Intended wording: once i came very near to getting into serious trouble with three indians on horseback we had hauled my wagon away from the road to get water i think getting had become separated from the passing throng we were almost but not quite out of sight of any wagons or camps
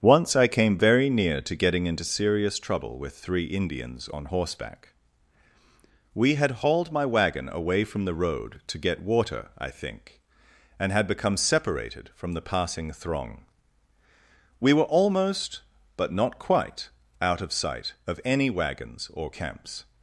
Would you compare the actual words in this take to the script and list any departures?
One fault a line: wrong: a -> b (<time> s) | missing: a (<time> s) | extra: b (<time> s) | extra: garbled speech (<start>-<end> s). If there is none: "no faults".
wrong: getting -> and (10.8 s)